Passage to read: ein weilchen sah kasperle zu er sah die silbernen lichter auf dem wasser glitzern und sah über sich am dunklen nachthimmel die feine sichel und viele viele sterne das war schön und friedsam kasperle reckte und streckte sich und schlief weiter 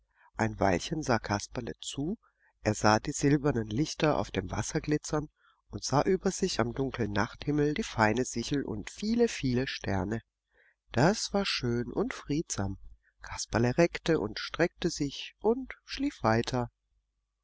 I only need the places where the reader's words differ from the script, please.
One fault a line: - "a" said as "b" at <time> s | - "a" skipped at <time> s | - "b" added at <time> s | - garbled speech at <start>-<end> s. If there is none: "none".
none